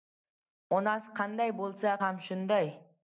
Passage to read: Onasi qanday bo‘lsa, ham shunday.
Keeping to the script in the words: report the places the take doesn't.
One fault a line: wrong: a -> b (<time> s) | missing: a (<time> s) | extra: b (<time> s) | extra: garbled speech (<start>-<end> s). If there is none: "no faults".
no faults